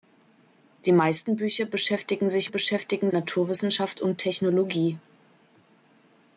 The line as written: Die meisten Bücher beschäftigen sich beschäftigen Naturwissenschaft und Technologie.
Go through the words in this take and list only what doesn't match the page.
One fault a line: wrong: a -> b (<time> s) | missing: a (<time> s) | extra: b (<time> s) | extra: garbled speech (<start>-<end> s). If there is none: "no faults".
no faults